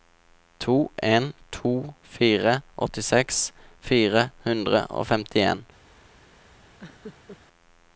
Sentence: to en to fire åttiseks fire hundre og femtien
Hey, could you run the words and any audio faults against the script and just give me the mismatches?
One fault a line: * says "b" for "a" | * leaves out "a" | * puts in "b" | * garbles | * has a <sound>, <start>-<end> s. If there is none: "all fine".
* has a laugh, 6.8-7.4 s